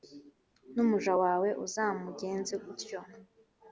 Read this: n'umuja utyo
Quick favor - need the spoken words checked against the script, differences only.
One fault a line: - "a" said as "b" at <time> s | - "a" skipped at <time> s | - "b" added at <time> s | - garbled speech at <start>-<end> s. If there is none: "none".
- "wawe uzamugenze" added at 1.2 s